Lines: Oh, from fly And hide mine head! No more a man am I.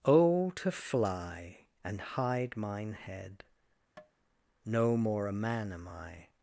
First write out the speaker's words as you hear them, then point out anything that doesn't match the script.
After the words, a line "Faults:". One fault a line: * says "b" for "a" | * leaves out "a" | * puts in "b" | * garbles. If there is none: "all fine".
Oh, to fly And hide mine head! No more a man am I.
Faults:
* says "to" for "from"